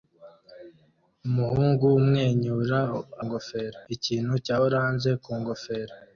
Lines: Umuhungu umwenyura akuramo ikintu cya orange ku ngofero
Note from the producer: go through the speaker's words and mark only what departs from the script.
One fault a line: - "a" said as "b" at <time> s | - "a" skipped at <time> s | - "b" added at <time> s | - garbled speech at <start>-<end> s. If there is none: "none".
- "akuramo" said as "ngofero" at 3.2 s